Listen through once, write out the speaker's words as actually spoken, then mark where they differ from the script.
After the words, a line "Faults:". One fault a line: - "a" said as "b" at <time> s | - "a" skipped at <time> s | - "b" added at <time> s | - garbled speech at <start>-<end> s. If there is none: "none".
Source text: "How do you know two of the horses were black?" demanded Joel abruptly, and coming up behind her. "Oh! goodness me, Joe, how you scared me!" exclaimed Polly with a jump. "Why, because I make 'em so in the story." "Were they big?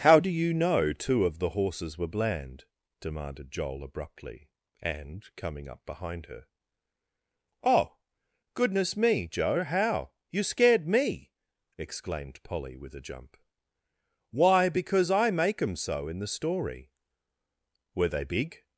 "How do you know two of the horses were bland?" demanded Joel abruptly, and coming up behind her. "Oh! goodness me, Joe, how you scared me!" exclaimed Polly with a jump. "Why, because I make 'em so in the story." "Were they big?
Faults:
- "black" said as "bland" at 2.1 s